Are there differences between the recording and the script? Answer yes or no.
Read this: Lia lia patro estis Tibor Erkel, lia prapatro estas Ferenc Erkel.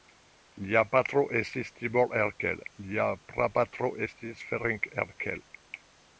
yes